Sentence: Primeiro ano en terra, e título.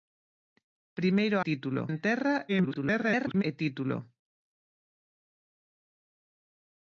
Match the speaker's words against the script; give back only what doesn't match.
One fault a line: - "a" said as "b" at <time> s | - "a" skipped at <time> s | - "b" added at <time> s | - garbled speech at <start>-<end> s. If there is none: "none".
- "ano" said as "título" at 1.5 s
- garbled speech at 2.5-3.4 s